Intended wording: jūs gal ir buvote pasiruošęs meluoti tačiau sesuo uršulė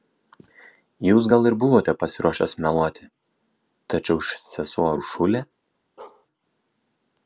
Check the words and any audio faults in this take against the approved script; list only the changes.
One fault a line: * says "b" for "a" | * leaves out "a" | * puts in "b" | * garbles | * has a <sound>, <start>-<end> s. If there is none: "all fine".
* has a bark, 6.0-6.3 s